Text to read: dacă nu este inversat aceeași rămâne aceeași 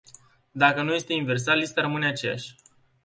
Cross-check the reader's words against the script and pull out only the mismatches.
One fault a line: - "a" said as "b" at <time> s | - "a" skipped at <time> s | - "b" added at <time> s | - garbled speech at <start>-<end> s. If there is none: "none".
- "aceeași" said as "lista" at 1.6 s